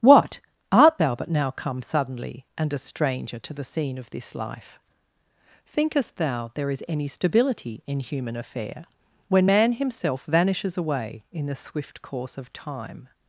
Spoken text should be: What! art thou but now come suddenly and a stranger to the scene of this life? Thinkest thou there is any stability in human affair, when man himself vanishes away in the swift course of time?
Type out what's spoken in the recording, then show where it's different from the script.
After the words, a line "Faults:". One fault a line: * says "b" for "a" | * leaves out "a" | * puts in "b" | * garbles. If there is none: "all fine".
What! art thou but now come suddenly and a stranger to the scene of this life? Thinkest thou there is any stability in human affair, when man himself vanishes away in the swift course of time?
Faults:
all fine